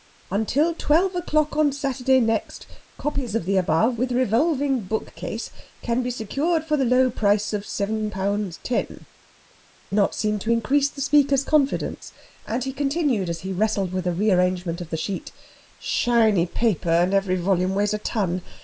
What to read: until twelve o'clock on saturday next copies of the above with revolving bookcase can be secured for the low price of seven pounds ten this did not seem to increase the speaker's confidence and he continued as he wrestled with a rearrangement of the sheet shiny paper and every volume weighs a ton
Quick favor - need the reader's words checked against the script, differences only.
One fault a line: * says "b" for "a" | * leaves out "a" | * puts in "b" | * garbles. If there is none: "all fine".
* leaves out "this did"